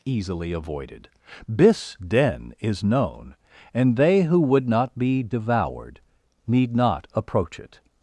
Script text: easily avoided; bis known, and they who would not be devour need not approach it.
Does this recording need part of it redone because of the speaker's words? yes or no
yes